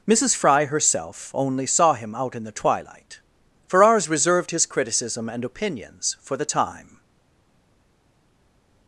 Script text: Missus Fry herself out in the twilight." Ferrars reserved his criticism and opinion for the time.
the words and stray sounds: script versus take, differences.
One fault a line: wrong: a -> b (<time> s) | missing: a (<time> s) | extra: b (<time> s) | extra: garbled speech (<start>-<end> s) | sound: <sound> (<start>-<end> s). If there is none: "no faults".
extra: only saw him (1.3 s)
wrong: opinion -> opinions (5.5 s)